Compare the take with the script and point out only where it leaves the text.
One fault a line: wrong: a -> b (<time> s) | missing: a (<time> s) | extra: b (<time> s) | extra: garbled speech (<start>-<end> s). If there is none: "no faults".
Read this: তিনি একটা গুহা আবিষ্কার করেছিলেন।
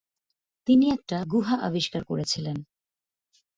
no faults